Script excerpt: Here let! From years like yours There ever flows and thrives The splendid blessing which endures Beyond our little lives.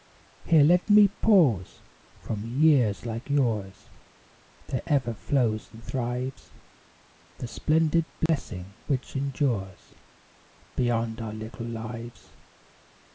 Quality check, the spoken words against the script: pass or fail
fail